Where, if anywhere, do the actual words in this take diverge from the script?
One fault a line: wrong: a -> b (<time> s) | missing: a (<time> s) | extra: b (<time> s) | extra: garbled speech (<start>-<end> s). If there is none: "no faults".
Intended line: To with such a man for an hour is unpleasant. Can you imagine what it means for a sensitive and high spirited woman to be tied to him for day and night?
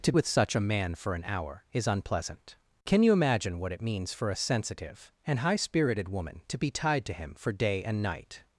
no faults